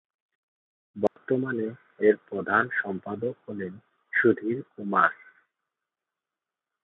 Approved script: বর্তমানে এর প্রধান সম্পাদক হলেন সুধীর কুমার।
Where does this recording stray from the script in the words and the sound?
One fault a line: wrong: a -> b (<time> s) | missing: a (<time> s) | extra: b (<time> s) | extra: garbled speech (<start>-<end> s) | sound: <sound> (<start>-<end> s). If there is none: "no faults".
sound: dropout (1.1-1.2 s)